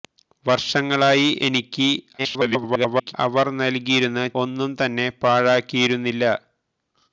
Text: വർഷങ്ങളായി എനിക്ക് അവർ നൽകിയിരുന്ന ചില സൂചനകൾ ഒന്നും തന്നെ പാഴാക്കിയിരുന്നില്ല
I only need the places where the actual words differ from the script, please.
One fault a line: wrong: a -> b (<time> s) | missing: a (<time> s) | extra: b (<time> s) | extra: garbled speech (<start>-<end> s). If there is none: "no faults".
extra: garbled speech (2.2-3.1 s)
missing: ചില സൂചനകൾ (4.2 s)